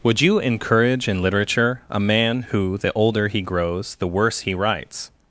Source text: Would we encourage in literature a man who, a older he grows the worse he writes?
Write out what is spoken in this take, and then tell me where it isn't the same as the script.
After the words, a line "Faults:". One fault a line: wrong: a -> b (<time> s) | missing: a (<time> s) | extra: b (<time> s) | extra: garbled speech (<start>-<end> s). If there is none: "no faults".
Would you encourage in literature a man who, the older he grows the worse he writes?
Faults:
wrong: we -> you (0.2 s)
wrong: a -> the (2.8 s)